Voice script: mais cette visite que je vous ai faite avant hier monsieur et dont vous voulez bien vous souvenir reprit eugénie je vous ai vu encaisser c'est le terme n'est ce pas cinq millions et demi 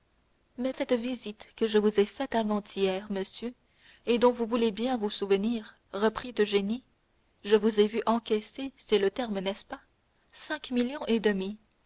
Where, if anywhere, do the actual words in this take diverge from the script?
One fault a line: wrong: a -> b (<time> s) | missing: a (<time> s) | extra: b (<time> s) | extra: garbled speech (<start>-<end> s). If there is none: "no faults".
no faults